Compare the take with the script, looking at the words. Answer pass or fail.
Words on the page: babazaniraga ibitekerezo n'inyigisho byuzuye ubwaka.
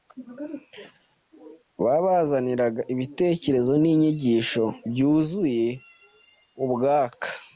pass